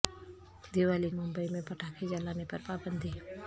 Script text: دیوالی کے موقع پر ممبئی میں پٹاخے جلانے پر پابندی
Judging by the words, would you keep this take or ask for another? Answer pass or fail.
fail